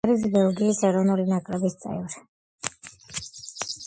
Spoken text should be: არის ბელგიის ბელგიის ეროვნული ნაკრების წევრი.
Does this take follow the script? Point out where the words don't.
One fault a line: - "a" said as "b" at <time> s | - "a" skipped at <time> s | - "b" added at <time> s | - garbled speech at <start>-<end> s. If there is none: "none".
- "ბელგიის" skipped at 0.8 s